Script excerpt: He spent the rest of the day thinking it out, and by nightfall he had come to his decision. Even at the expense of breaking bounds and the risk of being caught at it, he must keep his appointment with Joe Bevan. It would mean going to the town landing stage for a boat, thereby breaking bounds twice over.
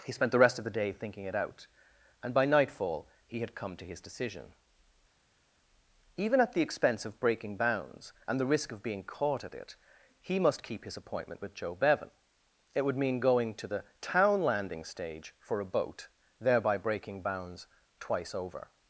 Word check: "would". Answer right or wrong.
right